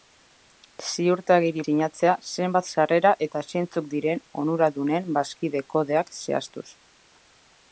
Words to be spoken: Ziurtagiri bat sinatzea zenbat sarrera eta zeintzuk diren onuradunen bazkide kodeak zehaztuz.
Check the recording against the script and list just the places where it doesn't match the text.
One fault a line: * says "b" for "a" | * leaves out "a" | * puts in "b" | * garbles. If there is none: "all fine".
* leaves out "bat"